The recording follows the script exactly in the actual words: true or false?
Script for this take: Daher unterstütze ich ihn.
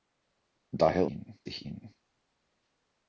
false